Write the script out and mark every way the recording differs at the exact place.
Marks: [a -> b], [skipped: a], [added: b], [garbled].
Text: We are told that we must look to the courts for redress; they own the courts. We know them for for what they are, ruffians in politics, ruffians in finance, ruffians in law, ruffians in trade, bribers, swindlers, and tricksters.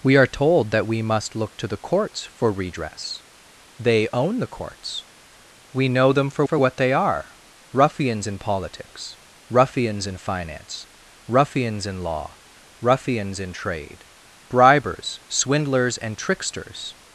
We are told that we must look to the courts for redress; they own the courts. We know them for for what they are, ruffians in politics, ruffians in finance, ruffians in law, ruffians in trade, bribers, swindlers, and tricksters.